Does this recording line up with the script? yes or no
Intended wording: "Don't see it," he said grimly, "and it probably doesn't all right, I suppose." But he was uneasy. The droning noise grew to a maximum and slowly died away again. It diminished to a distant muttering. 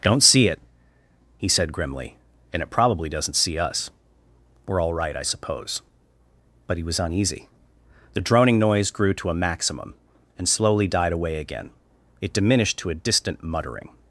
no